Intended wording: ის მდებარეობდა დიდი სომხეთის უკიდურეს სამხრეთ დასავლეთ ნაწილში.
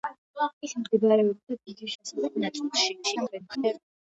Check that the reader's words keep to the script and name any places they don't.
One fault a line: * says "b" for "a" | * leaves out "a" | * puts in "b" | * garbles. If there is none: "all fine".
* leaves out "სომხეთის უკიდურეს სამხრეთ"
* garbles